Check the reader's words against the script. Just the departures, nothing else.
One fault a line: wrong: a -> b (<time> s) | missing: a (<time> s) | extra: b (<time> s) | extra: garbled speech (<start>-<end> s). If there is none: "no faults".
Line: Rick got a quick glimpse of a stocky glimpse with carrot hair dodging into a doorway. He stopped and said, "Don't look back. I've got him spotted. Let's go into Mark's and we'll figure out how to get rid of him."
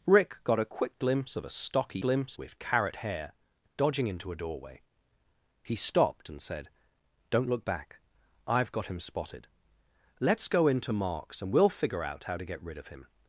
no faults